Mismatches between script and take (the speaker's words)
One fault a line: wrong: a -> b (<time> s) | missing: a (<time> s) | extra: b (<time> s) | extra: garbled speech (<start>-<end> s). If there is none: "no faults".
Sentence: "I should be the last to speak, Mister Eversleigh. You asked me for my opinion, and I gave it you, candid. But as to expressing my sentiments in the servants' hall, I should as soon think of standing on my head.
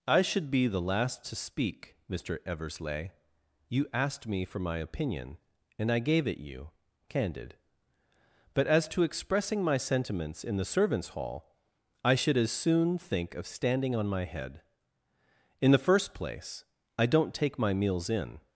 extra: In the first place I don't take my meals in (15.6 s)